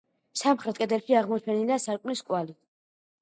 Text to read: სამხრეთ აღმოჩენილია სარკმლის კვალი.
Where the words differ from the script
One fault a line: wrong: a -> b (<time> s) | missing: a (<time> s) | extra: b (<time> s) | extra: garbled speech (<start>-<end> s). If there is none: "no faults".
extra: კედელში (0.8 s)